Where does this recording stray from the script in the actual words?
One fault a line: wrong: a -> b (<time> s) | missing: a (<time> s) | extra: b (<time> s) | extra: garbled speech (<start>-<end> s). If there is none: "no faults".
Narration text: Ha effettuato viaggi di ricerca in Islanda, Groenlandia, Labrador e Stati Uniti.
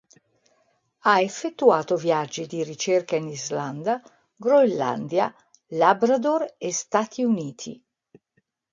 no faults